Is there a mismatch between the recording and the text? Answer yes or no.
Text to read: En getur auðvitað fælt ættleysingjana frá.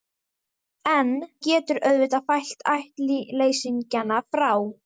no